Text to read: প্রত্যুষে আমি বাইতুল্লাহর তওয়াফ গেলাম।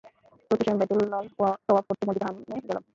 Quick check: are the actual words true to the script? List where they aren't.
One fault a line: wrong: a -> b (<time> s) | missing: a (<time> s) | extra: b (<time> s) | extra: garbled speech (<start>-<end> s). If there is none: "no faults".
extra: করতে মসজিদে হারামে (1.9 s)